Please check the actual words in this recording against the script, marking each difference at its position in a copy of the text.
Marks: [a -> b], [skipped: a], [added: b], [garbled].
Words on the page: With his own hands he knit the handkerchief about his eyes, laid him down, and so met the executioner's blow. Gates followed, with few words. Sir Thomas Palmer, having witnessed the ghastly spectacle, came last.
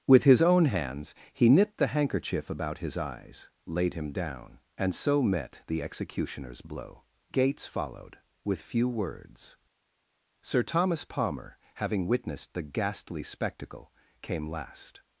With his own hands he knit the handkerchief about his eyes, laid him down, and so met the executioner's blow. Gates followed, with few words. Sir Thomas Palmer, having witnessed the ghastly spectacle, came last.